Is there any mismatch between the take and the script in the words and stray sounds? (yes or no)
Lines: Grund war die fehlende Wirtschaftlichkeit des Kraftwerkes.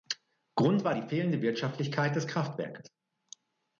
no